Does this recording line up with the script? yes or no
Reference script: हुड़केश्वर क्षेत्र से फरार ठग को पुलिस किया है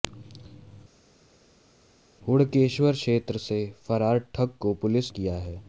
yes